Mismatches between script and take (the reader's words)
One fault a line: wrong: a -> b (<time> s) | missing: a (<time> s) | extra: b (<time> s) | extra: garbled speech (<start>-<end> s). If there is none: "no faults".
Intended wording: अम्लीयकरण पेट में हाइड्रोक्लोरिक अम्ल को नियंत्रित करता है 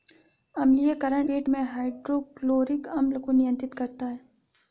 no faults